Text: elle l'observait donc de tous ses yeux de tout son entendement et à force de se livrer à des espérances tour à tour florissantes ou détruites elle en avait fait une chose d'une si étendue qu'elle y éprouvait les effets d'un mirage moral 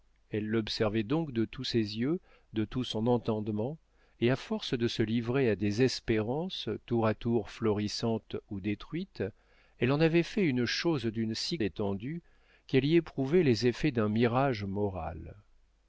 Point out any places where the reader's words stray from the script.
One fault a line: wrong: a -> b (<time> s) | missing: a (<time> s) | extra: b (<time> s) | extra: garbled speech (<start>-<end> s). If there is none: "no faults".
no faults